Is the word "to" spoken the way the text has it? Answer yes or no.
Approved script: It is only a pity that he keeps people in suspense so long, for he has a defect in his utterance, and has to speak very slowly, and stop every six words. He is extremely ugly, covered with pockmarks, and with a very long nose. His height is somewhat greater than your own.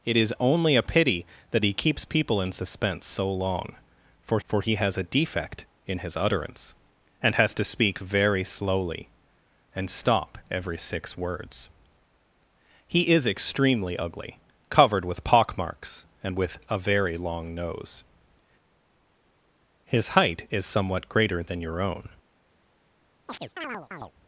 yes